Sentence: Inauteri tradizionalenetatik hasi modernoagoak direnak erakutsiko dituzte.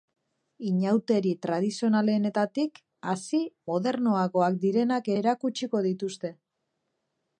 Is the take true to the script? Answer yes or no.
yes